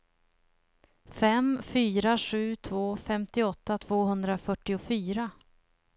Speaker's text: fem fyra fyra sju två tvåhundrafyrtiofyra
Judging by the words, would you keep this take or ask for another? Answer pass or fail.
fail